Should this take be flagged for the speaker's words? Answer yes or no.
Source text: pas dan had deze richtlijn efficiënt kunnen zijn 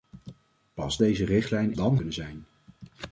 yes